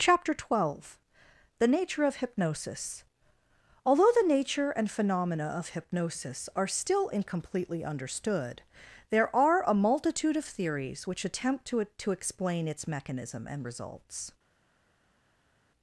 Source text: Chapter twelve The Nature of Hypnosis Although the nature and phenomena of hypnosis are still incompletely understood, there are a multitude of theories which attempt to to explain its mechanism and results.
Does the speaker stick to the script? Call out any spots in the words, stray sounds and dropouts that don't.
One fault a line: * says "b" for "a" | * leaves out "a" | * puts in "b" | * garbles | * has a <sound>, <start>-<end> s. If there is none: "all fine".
all fine